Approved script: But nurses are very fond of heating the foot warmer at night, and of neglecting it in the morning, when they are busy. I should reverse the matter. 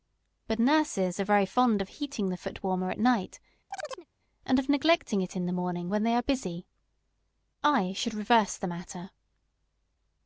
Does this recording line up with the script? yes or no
yes